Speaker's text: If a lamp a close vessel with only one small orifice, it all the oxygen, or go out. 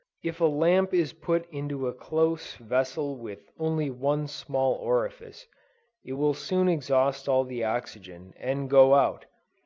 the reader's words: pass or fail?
fail